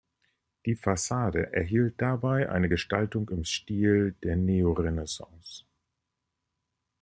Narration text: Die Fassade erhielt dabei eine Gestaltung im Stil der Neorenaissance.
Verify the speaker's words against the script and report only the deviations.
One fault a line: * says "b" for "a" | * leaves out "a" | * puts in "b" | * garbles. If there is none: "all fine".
all fine